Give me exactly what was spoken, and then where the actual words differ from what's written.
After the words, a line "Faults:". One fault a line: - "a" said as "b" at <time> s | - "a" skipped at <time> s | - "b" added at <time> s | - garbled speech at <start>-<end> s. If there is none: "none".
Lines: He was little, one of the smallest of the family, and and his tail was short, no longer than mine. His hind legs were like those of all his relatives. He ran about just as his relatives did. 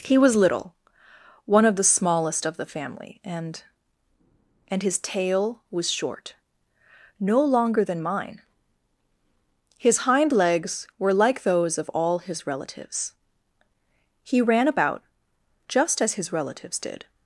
He was little, one of the smallest of the family, and and his tail was short, no longer than mine. His hind legs were like those of all his relatives. He ran about just as his relatives did.
Faults:
none